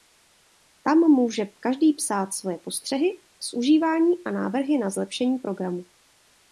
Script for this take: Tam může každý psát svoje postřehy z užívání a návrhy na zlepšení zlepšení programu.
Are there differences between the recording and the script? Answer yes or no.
yes